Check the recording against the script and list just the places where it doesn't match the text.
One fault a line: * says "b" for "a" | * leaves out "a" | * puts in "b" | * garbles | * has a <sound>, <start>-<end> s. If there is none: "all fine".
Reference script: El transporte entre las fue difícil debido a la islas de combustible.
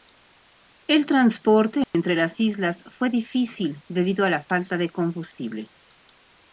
* has a dropout, 1.8-1.9 s
* puts in "islas"
* says "falta" for "islas"